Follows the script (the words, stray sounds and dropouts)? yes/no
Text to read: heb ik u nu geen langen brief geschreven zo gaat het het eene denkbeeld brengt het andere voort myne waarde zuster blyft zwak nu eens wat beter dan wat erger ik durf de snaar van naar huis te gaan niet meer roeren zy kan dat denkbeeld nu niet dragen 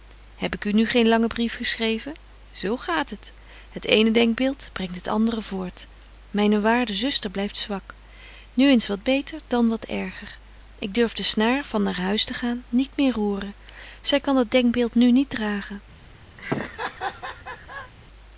no